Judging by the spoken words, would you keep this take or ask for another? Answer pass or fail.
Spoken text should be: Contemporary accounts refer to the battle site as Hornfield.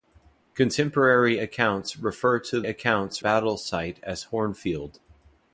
fail